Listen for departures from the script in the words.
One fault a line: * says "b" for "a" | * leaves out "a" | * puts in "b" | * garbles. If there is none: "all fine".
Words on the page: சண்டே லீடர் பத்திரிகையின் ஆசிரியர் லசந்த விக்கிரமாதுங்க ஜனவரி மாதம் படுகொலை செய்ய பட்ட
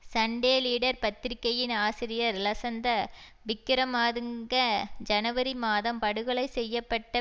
all fine